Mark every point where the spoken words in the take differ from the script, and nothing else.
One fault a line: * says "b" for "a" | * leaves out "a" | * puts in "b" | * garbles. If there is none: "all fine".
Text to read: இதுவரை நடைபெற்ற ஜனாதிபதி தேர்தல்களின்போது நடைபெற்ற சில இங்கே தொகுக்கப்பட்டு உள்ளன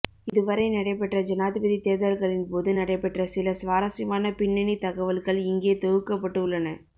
* puts in "சுவாரஸ்யமான பின்னணி தகவல்கள்"